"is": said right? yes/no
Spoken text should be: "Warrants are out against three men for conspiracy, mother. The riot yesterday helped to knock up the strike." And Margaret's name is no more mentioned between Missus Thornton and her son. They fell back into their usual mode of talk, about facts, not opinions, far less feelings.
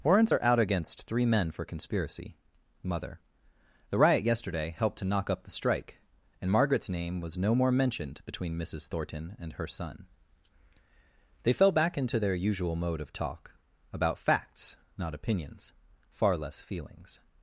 no